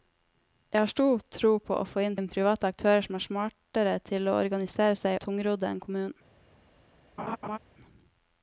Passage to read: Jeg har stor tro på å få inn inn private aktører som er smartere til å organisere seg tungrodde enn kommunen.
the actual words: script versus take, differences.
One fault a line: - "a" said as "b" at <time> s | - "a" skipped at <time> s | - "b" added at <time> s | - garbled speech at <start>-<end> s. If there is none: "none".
none